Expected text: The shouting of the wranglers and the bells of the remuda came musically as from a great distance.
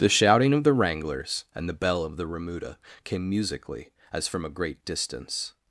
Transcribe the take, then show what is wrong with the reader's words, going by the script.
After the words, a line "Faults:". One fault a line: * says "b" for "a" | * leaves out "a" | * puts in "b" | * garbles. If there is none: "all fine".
The shouting of the wranglers and the bell of the remuda came musically as from a great distance.
Faults:
* says "bell" for "bells"